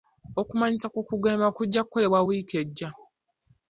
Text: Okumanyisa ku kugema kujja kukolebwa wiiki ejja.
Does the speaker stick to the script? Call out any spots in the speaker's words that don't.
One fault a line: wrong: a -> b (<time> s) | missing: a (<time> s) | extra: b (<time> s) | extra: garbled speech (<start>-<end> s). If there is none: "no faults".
no faults